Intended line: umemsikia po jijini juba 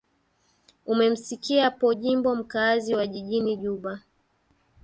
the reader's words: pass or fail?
fail